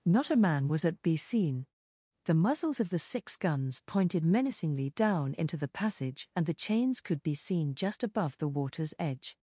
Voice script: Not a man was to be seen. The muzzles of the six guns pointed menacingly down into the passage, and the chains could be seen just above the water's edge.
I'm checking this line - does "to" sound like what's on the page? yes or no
no